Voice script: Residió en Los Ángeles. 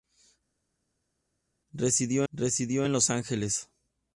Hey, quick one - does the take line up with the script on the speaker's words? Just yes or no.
no